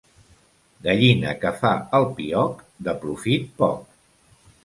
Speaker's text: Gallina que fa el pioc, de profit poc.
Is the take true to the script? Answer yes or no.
yes